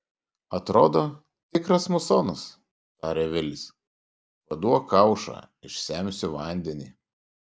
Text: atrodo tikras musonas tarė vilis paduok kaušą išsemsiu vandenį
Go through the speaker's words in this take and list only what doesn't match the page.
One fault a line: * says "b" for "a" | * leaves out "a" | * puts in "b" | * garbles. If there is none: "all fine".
all fine